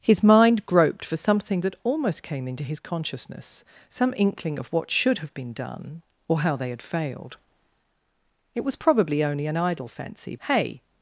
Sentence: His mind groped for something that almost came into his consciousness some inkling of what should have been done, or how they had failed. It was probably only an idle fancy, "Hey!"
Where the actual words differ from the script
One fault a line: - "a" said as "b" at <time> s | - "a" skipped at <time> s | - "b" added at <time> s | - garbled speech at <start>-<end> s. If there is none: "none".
none